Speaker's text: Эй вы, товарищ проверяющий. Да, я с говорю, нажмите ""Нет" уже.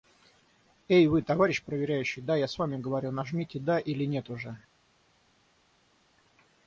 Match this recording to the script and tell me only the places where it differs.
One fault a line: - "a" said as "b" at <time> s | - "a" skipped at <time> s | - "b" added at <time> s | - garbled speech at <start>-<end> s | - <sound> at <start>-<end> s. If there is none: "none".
- "вами" added at 2.6 s
- "Да или" added at 3.6 s